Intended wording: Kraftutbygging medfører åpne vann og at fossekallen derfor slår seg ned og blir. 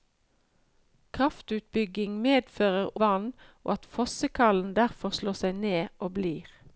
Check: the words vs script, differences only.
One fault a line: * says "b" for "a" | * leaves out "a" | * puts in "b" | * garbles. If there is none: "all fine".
* leaves out "åpne"